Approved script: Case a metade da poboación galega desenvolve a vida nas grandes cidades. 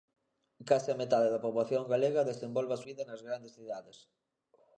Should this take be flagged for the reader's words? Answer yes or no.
no